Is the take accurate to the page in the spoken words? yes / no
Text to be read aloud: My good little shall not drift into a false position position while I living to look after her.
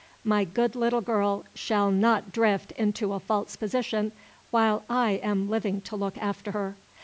no